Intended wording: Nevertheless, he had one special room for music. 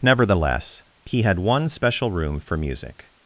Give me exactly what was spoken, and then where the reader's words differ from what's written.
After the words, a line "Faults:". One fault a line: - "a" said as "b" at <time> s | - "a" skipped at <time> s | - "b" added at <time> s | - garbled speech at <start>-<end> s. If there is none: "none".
Nevertheless, he had one special room for music.
Faults:
none